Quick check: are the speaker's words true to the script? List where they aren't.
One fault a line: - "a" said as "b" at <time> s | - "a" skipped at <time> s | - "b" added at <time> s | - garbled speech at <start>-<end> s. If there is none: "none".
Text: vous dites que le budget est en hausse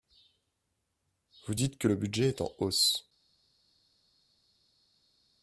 none